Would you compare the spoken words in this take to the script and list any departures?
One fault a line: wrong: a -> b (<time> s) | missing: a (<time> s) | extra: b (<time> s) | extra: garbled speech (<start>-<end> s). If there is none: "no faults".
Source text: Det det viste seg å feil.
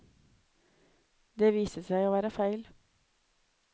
missing: det (1.5 s)
extra: være (2.1 s)